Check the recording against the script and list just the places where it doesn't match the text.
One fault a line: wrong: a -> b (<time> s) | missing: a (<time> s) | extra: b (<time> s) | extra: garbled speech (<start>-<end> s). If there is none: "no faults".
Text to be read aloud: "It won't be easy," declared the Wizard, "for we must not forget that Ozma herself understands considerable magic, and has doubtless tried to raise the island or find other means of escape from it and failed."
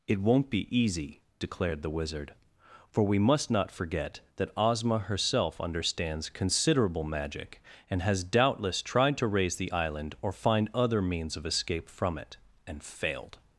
no faults